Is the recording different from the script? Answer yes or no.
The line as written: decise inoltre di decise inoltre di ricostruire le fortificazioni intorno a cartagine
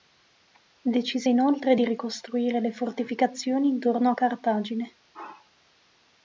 yes